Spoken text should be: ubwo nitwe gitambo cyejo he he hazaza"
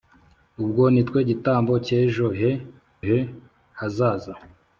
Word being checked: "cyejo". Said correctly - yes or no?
yes